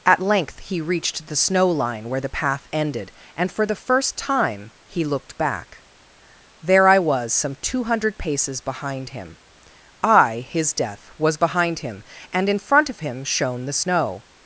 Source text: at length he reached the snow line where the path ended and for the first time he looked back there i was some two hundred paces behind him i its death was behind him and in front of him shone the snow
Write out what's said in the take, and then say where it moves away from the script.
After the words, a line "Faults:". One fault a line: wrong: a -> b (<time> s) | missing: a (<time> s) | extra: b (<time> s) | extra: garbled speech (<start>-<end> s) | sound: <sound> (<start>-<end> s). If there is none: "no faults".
at length he reached the snow line where the path ended and for the first time he looked back there i was some two hundred paces behind him i his death was behind him and in front of him shone the snow
Faults:
wrong: its -> his (10.4 s)